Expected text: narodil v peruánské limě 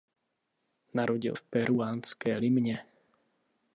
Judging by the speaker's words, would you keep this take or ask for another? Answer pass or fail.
pass